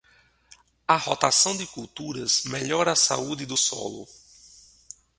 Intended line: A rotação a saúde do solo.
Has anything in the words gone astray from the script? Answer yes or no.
yes